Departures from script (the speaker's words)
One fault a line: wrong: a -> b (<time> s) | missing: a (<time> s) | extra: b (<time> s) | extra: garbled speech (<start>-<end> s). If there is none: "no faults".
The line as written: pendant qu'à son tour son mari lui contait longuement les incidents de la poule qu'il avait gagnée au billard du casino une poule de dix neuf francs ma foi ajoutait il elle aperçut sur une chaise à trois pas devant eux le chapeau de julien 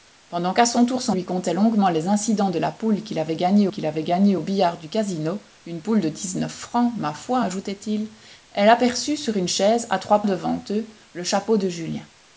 missing: mari (1.1 s)
extra: qu'il avait gagnée (3.7 s)
missing: pas (10.2 s)